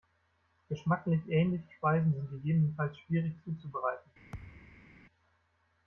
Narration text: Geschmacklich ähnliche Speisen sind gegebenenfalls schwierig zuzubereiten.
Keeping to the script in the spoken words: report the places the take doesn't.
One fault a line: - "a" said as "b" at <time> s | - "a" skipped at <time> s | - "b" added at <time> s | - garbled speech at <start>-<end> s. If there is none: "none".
none